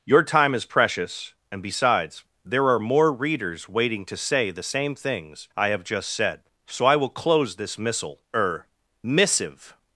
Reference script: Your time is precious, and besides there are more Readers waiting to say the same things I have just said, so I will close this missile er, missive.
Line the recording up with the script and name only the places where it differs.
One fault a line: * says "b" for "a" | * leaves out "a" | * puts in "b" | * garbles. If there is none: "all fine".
all fine